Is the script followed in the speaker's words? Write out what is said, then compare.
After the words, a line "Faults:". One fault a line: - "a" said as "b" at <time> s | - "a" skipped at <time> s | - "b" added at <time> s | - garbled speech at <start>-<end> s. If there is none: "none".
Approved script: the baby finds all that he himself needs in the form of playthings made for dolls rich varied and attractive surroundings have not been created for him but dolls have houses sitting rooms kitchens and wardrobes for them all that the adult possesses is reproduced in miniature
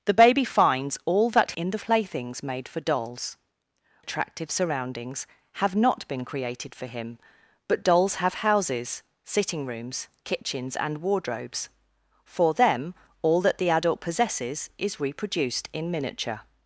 the baby finds all that in the playthings made for dolls attractive surroundings have not been created for him but dolls have houses sitting rooms kitchens and wardrobes for them all that the adult possesses is reproduced in miniature
Faults:
- "he himself needs" skipped at 1.5 s
- "form of" skipped at 1.8 s
- "rich varied and" skipped at 3.4 s